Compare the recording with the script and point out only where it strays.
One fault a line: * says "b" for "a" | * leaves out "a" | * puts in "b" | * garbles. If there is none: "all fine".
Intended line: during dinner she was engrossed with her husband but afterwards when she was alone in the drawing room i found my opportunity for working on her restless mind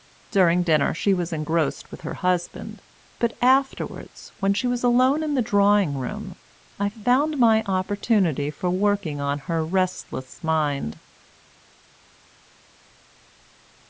all fine